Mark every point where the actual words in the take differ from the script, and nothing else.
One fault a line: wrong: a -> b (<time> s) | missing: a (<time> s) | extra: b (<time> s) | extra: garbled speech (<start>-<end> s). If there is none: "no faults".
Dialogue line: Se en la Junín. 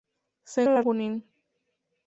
no faults